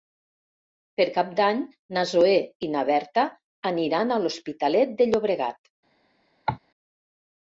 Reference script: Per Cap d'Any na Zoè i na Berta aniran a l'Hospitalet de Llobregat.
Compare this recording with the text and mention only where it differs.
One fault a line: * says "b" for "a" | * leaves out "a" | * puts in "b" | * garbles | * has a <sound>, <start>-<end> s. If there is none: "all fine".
* has a cough, 6.5-6.6 s